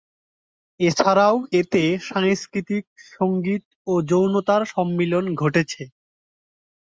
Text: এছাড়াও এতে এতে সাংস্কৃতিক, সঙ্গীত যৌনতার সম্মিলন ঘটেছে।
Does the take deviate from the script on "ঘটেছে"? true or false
false